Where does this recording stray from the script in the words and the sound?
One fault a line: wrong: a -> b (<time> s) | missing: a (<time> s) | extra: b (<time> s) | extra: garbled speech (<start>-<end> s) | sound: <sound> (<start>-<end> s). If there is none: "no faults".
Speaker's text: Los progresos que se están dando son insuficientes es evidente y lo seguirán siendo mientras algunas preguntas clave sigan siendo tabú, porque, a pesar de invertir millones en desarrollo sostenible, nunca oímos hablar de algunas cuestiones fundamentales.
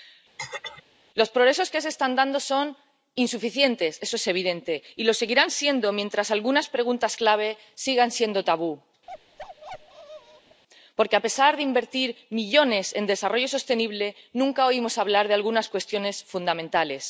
sound: throat clearing (0.4-0.8 s)
extra: eso (4.1 s)
sound: bark (9.1-10.6 s)